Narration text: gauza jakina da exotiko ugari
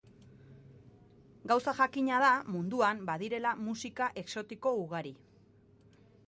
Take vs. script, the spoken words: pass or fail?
fail